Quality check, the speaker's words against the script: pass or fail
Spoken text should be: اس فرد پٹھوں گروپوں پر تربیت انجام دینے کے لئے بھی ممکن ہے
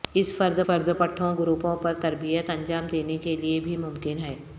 fail